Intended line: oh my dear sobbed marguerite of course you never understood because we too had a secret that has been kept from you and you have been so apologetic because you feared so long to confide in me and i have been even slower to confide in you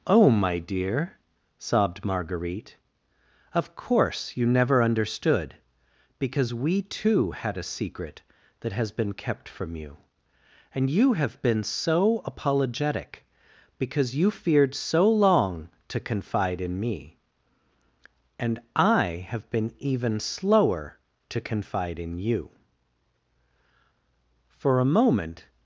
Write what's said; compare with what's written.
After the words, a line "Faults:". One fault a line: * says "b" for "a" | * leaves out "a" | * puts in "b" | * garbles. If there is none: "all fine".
oh my dear sobbed marguerite of course you never understood because we too had a secret that has been kept from you and you have been so apologetic because you feared so long to confide in me and i have been even slower to confide in you for a moment
Faults:
* puts in "for a moment"